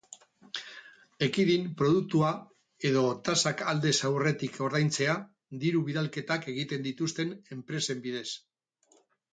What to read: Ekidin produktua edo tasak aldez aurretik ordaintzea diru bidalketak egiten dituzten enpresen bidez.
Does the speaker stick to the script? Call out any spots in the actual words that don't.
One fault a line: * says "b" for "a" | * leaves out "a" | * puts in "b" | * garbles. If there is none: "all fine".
all fine